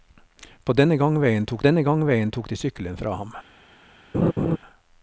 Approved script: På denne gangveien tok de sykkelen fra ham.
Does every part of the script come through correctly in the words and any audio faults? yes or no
no